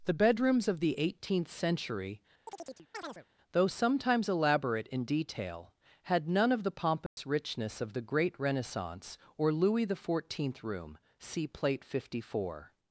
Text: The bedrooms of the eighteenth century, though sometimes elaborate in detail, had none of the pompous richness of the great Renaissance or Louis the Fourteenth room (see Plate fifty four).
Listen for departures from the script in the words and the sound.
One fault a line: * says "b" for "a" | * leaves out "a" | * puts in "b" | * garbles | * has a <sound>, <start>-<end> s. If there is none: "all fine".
* has a chirp, 2.5-3.3 s
* has a dropout, 7.1-7.2 s